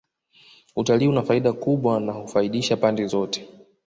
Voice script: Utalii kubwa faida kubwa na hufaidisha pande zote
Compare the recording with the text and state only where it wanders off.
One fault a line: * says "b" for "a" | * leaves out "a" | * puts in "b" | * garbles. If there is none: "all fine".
* says "una" for "kubwa"